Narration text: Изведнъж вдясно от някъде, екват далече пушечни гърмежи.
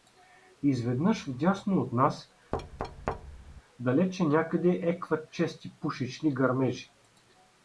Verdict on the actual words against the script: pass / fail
fail